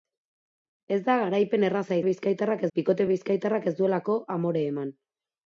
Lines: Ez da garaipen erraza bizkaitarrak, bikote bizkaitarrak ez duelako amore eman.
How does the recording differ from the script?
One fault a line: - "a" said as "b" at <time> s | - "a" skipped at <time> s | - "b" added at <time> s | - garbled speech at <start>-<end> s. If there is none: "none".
none